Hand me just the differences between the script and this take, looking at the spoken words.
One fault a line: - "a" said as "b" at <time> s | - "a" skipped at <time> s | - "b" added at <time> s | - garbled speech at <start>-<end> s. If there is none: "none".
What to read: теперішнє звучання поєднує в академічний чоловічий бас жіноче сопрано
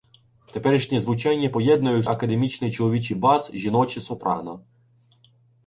none